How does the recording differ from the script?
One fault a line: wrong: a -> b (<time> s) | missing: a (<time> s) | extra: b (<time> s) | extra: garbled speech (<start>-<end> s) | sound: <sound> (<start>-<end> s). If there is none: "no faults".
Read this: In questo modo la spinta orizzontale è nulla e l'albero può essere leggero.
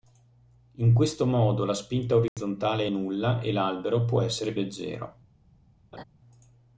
sound: dropout (2.3-2.4 s)
sound: laugh (5.9-6.0 s)